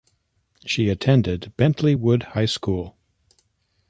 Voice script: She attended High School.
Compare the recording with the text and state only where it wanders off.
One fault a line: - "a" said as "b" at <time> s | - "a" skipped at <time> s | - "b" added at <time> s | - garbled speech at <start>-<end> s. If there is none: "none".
- "Bentley Wood" added at 1.6 s